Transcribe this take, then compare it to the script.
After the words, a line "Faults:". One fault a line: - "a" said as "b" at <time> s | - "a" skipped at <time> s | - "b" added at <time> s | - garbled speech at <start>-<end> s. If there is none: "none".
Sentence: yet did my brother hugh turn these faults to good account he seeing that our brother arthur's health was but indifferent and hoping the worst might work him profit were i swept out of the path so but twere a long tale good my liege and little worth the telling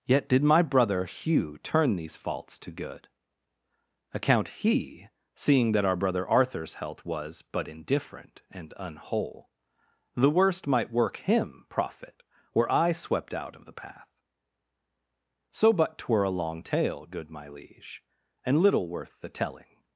yet did my brother hugh turn these faults to good account he seeing that our brother arthur's health was but indifferent and unwhole the worst might work him profit were i swept out of the path so but twere a long tale good my liege and little worth the telling
Faults:
- "hoping" said as "unwhole" at 8.8 s